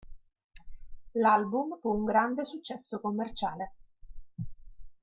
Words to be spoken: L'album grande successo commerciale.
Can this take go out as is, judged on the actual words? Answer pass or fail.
fail